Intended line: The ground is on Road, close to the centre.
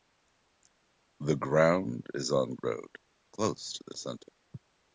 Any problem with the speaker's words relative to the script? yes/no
no